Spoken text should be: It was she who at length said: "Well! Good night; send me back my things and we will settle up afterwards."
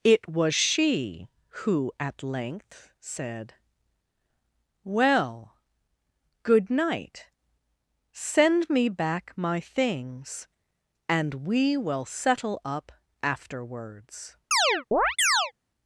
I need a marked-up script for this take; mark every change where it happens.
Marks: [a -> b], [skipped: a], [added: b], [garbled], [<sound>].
It was she who at length said: "Well! Good night; send me back my things and we will settle up afterwards." [chirp]